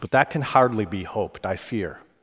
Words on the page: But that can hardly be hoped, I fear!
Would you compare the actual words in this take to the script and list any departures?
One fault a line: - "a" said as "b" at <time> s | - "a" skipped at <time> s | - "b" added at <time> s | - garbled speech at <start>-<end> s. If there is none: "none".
none